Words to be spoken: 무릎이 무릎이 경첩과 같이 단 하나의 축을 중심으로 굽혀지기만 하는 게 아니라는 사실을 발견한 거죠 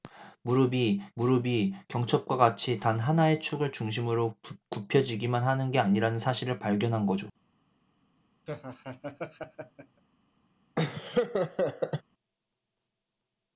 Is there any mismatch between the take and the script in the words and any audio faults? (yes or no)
yes